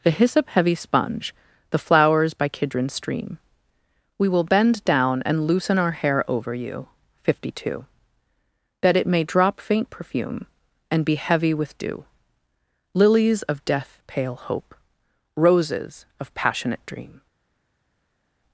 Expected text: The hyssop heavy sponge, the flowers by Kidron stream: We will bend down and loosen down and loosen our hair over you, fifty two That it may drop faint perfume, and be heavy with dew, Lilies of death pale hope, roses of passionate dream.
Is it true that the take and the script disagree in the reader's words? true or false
true